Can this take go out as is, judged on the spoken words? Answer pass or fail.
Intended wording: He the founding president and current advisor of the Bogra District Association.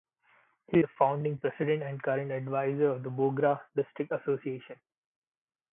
pass